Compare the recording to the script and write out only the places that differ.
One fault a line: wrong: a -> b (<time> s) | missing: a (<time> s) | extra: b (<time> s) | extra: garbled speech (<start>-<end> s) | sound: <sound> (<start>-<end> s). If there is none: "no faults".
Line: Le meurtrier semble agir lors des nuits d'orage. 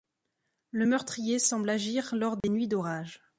sound: dropout (2.4-2.4 s)